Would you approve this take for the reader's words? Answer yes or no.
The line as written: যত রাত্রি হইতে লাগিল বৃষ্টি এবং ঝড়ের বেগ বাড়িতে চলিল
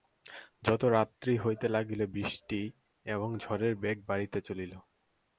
yes